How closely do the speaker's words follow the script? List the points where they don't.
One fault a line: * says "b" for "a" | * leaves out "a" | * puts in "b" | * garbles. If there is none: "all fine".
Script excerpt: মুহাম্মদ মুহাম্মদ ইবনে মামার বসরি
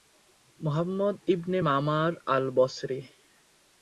* leaves out "মুহাম্মদ"
* puts in "আল"